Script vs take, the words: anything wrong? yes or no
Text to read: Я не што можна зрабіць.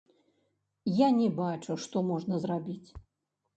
yes